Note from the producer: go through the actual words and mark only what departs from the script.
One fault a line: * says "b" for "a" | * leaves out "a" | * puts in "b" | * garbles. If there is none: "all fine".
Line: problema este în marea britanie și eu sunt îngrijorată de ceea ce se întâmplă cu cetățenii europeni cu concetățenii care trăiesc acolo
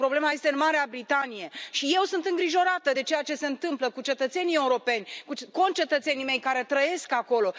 * puts in "mei"